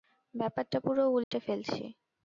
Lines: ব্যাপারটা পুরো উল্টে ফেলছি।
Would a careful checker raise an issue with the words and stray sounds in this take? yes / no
yes